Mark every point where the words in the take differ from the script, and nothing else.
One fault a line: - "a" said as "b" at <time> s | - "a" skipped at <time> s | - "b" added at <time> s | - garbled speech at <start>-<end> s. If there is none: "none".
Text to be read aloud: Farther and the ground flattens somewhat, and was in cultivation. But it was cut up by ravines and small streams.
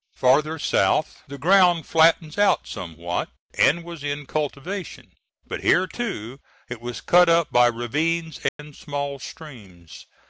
- "and" said as "south" at 0.6 s
- "out" added at 2.4 s
- "here too" added at 5.6 s